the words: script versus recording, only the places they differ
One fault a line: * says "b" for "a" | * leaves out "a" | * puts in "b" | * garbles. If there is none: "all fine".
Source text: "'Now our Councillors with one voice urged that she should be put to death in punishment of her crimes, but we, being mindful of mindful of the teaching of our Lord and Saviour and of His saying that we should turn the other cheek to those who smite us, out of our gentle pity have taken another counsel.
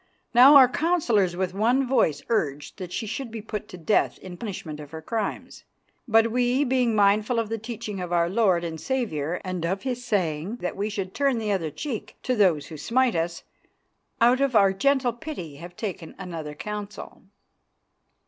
* leaves out "mindful of"